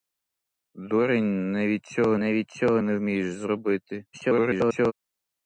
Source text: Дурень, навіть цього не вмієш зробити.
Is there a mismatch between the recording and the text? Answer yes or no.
yes